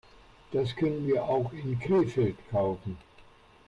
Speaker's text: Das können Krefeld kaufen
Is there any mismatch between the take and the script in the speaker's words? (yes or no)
yes